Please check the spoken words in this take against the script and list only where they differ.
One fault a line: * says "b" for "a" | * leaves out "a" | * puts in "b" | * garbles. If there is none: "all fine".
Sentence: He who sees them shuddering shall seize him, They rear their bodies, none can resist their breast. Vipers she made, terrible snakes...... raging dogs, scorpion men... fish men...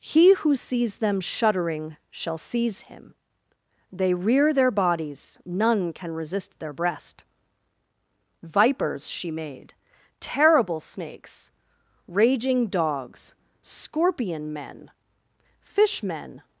all fine